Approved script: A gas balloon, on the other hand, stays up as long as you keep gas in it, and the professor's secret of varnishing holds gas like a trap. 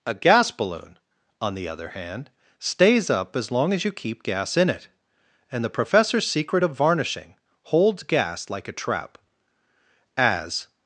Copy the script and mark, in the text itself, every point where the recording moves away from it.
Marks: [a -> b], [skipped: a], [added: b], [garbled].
A gas balloon, on the other hand, stays up as long as you keep gas in it, and the professor's secret of varnishing holds gas like a trap. [added: As]